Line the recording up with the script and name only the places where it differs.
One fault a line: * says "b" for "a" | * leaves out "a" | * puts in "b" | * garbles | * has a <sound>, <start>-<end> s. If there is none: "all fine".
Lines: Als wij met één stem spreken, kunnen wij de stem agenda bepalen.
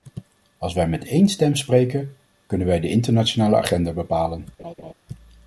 * says "internationale" for "stem"
* has a laugh, 4.6-4.9 s